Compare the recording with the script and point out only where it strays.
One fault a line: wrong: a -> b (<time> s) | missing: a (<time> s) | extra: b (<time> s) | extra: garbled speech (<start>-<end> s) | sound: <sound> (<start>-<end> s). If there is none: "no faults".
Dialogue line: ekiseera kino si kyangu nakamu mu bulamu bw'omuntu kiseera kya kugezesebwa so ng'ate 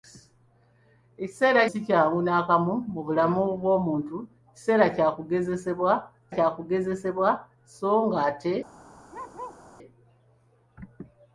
missing: kino (1.6 s)
extra: kya kugezesebwa (6.3 s)
sound: bark (9.1-9.6 s)